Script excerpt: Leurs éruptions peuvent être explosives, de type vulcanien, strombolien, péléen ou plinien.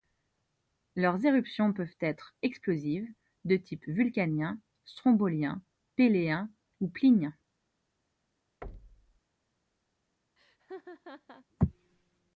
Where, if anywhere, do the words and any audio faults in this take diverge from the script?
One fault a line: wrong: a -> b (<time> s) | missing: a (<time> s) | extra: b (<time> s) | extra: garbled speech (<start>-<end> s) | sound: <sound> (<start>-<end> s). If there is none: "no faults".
sound: thud (8.6-9.2 s)
sound: laugh (10.4-11.5 s)